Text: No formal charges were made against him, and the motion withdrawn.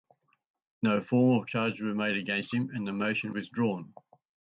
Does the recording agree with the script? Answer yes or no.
yes